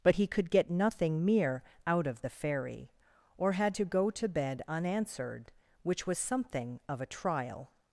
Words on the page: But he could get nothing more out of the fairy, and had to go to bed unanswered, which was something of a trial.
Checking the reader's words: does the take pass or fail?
fail